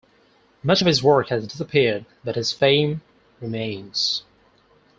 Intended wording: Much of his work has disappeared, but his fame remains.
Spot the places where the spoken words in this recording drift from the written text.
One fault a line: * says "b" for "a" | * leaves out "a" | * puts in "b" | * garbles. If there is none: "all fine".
all fine